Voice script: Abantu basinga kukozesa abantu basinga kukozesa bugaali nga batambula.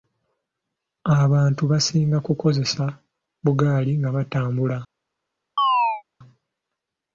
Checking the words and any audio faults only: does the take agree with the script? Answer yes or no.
no